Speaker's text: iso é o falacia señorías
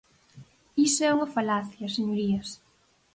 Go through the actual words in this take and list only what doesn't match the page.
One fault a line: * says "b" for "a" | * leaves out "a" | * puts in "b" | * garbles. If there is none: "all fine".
* says "unha" for "o"